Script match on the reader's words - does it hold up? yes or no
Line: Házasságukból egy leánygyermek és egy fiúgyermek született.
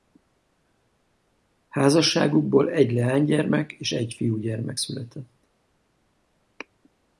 yes